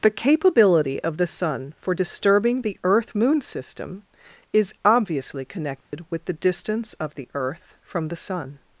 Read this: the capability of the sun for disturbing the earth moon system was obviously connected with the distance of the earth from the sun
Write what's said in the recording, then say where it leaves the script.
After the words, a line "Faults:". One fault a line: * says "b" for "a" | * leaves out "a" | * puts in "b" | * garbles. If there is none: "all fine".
the capability of the sun for disturbing the earth moon system is obviously connected with the distance of the earth from the sun
Faults:
* says "is" for "was"